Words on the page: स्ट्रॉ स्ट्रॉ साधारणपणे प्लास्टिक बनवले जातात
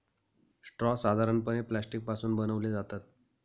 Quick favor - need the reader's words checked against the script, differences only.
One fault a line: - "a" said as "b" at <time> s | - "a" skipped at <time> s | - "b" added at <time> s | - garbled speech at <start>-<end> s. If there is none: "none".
- "स्ट्रॉ" skipped at 0.9 s
- "पासून" added at 2.0 s